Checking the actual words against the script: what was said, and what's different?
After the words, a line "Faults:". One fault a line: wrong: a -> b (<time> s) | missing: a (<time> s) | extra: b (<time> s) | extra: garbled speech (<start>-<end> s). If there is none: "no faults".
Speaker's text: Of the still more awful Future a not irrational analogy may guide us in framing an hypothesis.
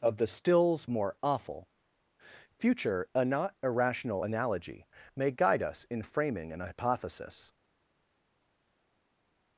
Of the stills more awful Future a not irrational analogy may guide us in framing an hypothesis.
Faults:
wrong: still -> stills (0.3 s)